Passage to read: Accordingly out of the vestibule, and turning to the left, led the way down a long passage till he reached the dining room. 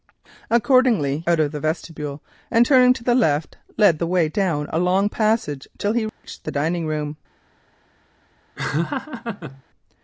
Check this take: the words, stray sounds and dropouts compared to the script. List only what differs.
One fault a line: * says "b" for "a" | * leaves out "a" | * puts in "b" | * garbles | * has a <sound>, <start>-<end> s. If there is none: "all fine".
* has a dropout, 6.1-6.2 s
* has a laugh, 8.6-9.6 s